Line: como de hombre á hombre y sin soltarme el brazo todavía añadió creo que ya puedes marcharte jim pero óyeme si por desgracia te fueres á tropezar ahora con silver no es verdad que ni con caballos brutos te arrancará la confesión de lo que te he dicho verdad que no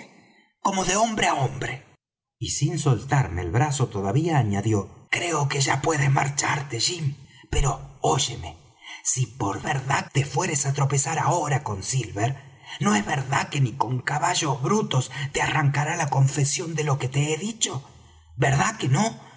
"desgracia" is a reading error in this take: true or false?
true